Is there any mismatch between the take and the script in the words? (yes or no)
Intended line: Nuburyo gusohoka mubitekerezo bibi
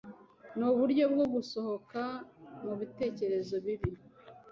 yes